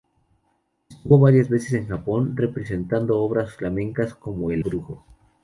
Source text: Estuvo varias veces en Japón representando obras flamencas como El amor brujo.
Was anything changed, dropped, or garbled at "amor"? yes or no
yes